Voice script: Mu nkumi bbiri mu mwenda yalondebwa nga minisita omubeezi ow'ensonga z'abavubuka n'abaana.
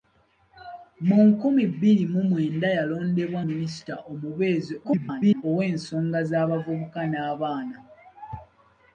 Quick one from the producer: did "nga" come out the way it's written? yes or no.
no